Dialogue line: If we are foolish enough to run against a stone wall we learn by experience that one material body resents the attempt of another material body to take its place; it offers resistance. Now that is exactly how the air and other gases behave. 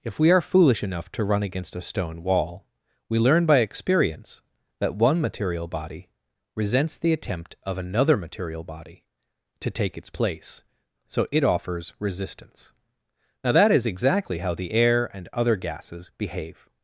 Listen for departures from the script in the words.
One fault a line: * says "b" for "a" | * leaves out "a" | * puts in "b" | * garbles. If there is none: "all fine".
* puts in "so"